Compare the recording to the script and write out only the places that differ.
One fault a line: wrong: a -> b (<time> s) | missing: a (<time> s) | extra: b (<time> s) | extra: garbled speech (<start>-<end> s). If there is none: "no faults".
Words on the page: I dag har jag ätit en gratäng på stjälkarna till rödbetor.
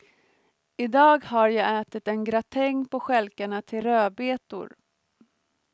no faults